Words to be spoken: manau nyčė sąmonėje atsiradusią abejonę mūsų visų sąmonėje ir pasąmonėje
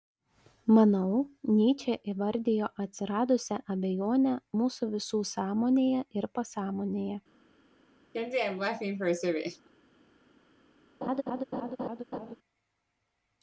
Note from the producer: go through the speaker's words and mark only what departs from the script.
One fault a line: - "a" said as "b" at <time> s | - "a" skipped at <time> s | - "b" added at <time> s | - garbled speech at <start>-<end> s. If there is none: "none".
- "sąmonėje" said as "įvardijo" at 2.1 s